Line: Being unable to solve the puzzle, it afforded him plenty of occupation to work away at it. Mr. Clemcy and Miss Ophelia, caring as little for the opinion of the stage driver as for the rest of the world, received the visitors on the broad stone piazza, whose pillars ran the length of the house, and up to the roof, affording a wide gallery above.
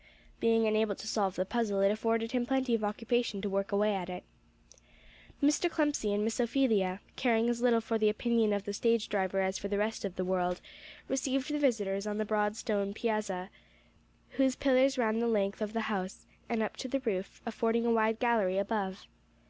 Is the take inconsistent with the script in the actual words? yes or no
no